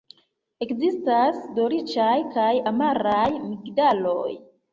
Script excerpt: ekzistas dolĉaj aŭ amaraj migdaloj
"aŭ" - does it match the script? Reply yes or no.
no